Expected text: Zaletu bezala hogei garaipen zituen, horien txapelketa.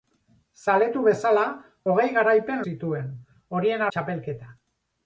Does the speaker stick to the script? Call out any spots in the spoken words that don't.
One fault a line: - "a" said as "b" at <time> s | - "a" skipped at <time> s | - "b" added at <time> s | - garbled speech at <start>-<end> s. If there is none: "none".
none